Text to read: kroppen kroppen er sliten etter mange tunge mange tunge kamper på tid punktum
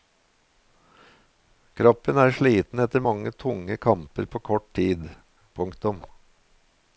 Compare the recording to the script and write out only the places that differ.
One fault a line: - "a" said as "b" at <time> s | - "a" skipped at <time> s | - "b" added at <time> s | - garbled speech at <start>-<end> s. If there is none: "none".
- "kroppen" skipped at 2.2 s
- "mange tunge" skipped at 3.8 s
- "kort" added at 4.5 s